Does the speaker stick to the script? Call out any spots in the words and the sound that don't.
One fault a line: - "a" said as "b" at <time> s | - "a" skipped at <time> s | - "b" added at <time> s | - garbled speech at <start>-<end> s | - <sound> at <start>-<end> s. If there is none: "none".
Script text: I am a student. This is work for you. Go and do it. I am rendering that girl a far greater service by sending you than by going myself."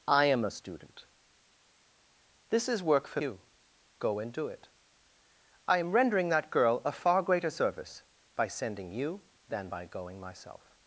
none